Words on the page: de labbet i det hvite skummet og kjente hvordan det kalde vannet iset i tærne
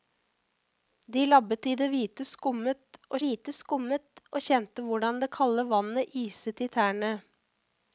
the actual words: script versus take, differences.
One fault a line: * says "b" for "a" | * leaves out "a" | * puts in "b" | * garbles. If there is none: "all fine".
* puts in "hvite skummet og"